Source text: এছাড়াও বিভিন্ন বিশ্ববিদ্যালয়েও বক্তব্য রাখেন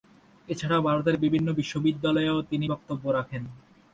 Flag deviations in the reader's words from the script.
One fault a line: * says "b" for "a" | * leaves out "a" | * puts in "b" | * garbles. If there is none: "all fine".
* puts in "ভারতের"
* puts in "তিনি"